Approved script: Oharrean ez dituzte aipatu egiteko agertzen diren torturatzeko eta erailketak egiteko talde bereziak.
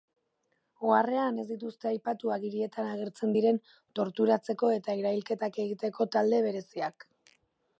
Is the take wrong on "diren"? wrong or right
right